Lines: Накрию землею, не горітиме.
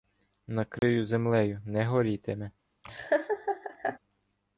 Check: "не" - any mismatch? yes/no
no